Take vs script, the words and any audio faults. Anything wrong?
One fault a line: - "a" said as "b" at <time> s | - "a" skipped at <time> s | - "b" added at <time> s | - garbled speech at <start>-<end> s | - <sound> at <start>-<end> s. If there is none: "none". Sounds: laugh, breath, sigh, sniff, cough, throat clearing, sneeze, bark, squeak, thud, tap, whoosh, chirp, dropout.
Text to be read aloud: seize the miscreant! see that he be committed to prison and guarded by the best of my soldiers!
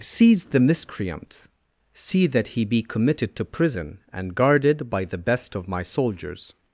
none